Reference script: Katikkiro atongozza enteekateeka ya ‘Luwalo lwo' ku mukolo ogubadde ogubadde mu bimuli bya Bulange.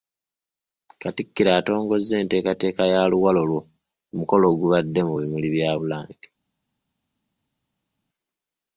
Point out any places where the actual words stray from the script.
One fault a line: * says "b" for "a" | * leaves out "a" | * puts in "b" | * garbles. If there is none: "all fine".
* leaves out "ogubadde"